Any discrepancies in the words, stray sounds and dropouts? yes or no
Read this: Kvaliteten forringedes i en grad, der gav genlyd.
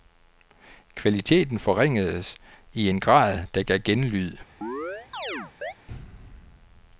yes